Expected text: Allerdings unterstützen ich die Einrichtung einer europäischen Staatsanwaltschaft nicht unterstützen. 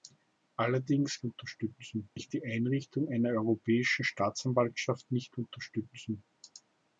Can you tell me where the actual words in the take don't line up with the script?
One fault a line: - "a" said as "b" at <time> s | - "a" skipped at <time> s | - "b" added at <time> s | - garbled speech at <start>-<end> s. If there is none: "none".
none